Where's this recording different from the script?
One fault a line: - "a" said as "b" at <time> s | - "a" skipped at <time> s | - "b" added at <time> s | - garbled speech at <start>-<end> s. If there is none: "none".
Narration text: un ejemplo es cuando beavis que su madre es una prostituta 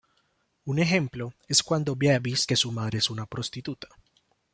none